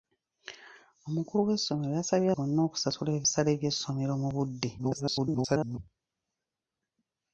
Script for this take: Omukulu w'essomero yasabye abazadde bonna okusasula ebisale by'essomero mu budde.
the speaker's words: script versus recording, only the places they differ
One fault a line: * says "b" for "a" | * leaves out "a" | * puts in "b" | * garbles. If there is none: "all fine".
* leaves out "abazadde"
* garbles